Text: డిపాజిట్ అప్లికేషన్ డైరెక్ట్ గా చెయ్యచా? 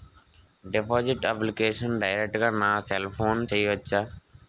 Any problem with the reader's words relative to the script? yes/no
yes